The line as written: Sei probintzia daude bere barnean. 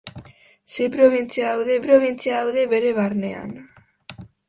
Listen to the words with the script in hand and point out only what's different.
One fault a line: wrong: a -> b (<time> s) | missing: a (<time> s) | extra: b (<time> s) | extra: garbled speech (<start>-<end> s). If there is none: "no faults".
extra: probintzia daude (1.9 s)